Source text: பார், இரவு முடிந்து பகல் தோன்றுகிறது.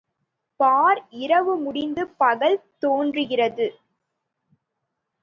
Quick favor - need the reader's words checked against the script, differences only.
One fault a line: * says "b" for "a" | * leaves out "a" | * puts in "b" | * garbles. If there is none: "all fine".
all fine